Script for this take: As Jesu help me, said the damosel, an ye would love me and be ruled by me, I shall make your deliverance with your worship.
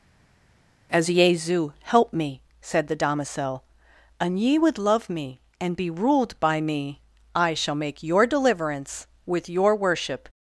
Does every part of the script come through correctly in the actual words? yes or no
yes